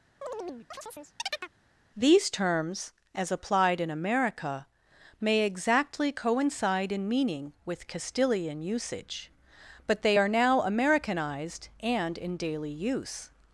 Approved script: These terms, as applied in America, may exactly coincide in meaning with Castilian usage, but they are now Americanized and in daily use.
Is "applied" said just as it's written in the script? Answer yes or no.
yes